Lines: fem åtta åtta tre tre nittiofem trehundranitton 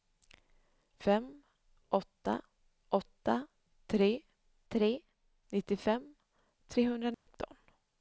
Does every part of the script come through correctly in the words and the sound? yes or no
no